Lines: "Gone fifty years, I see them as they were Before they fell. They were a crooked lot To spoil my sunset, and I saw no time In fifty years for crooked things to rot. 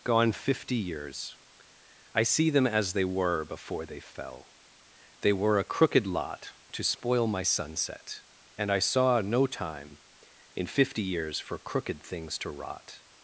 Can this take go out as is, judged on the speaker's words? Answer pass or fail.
pass